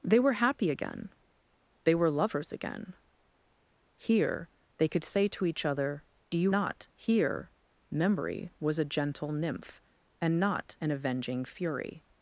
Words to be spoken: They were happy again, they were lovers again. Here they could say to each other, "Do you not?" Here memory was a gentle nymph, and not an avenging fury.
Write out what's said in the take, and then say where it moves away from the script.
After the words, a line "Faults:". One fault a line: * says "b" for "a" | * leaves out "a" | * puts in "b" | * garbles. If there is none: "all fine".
They were happy again, they were lovers again. Here they could say to each other, "Do you not?" Here memory was a gentle nymph, and not an avenging fury.
Faults:
all fine